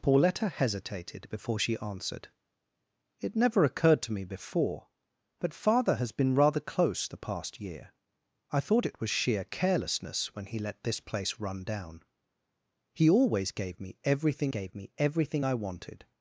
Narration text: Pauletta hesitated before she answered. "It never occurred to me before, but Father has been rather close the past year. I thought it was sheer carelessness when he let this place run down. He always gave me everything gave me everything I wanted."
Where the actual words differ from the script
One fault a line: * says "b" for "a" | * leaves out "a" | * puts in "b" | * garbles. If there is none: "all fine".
all fine